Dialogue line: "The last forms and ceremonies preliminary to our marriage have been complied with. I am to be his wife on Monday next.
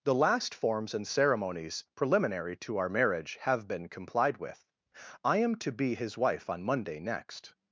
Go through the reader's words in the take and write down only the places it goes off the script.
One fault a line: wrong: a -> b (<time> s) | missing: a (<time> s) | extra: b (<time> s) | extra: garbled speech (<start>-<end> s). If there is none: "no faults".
no faults